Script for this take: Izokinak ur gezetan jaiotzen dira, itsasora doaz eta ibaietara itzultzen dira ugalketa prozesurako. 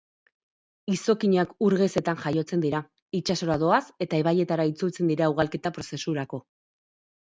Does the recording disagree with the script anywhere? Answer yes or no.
no